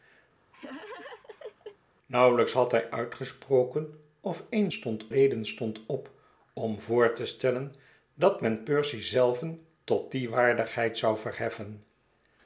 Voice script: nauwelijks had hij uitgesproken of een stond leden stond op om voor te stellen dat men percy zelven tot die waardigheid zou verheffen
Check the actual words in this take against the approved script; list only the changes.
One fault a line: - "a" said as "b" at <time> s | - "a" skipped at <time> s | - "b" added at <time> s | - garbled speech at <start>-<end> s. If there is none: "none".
none